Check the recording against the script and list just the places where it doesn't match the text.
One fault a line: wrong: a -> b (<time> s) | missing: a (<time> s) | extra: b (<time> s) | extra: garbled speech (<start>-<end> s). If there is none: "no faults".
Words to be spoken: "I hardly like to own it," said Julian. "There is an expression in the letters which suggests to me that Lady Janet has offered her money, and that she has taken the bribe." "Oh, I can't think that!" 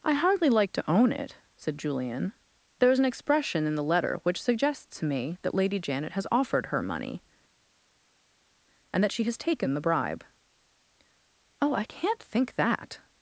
wrong: letters -> letter (3.8 s)